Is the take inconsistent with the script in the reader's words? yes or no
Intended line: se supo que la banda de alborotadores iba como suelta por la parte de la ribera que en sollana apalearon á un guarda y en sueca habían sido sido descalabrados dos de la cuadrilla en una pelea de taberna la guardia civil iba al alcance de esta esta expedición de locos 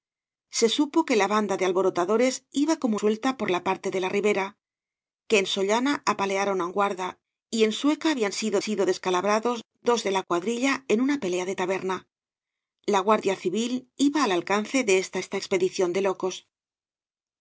no